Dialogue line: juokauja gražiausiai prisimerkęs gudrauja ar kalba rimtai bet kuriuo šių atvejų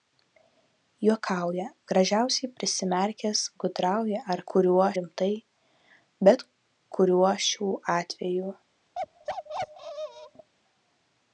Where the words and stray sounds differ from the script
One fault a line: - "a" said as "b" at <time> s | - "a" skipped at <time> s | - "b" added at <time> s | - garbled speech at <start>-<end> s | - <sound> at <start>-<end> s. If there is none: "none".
- "kalba" said as "kuriuo" at 4.5 s
- bark at 8.9-10.5 s